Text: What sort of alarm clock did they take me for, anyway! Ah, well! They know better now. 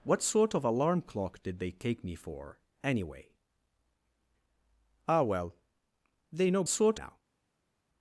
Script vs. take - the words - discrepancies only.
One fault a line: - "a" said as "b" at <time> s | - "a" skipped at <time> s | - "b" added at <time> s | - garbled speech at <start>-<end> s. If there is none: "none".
- "better" said as "sort" at 6.7 s